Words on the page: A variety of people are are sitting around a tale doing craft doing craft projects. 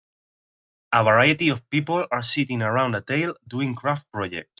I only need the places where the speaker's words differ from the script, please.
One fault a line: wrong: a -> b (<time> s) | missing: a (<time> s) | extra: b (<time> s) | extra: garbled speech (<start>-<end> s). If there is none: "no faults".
missing: are (2.2 s)
missing: doing craft (4.1 s)